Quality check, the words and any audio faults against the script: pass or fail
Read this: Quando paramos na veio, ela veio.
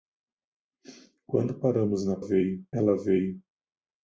pass